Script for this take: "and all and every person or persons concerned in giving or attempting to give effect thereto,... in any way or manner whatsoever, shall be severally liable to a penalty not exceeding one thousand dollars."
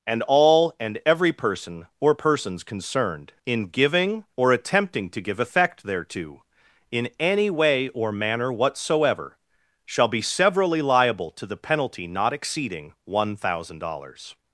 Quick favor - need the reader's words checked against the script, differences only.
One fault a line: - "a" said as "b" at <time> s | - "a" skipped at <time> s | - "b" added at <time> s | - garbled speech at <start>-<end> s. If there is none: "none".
- "a" said as "the" at 11.5 s